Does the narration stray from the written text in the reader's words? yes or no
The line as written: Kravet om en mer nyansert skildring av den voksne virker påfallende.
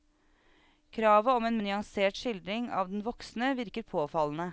yes